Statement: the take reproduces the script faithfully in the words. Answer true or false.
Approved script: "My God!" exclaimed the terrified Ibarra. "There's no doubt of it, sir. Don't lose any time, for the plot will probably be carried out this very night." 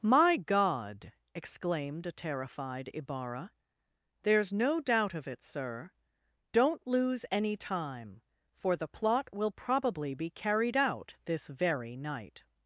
false